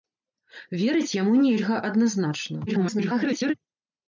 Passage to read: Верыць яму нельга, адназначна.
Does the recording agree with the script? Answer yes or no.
no